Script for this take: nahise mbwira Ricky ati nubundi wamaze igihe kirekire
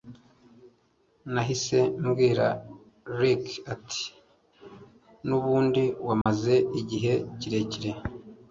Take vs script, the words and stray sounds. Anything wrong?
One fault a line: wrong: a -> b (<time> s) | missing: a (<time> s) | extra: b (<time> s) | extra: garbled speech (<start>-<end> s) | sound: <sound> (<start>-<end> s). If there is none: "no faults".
sound: dropout (6.2-6.3 s)